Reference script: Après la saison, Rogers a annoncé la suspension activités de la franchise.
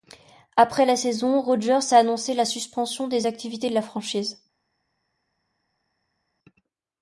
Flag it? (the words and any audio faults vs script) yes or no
yes